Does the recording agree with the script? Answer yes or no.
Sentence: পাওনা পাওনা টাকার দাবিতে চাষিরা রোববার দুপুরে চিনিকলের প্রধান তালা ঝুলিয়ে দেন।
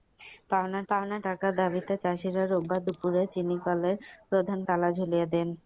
yes